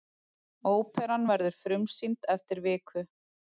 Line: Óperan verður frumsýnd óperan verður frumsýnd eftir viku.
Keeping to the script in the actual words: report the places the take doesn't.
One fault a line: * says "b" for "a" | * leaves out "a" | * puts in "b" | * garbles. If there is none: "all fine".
* leaves out "óperan verður frumsýnd"